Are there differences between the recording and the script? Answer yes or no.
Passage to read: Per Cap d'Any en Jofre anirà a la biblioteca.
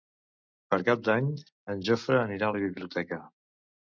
no